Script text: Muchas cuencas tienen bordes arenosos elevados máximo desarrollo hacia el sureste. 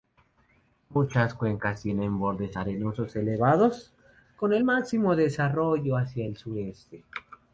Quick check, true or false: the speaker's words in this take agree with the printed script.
false